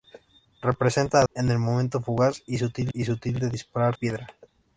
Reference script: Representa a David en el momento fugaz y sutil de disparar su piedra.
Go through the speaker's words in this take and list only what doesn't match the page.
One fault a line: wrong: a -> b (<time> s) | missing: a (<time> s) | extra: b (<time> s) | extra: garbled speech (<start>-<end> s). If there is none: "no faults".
missing: David (1.2 s)
extra: y sutil (2.9 s)
missing: su (4.0 s)